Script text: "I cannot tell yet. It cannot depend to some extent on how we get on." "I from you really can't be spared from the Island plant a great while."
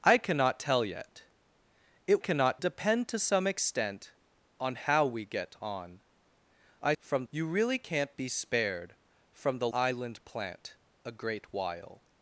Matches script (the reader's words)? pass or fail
pass